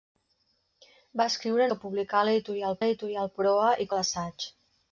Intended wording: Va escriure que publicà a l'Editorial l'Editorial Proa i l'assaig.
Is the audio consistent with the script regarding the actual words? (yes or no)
yes